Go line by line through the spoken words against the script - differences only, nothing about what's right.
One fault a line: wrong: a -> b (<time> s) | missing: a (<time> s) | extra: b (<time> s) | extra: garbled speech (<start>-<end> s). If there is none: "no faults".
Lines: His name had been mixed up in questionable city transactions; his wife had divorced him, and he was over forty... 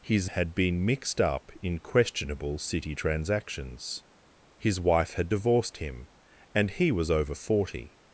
missing: name (0.3 s)